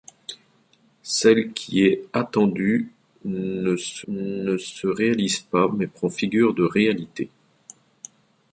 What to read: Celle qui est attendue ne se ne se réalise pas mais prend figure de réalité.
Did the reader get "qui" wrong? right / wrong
right